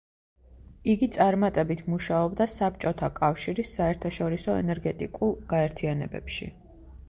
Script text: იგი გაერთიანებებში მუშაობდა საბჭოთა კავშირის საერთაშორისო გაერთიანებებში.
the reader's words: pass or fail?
fail